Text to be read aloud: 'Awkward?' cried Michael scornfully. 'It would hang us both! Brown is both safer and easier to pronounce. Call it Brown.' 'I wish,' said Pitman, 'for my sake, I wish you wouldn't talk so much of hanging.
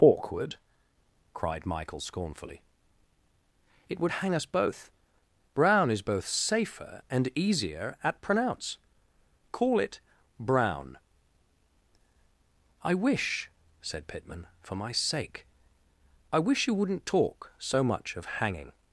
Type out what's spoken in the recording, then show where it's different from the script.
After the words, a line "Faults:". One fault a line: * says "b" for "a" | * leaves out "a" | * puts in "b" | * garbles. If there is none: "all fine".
'Awkward?' cried Michael scornfully. 'It would hang us both! Brown is both safer and easier at pronounce. Call it Brown.' 'I wish,' said Pitman, 'for my sake, I wish you wouldn't talk so much of hanging.
Faults:
* says "at" for "to"